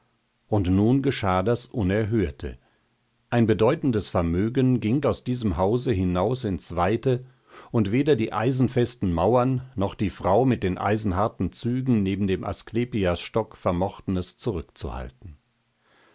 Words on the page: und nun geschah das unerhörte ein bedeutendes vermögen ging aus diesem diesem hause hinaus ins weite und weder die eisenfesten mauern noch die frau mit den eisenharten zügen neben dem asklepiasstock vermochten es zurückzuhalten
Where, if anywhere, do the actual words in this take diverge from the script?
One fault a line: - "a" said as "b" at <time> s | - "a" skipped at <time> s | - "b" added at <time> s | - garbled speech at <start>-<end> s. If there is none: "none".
- "diesem" skipped at 5.6 s